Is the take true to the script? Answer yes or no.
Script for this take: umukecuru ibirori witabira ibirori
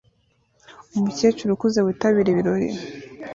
no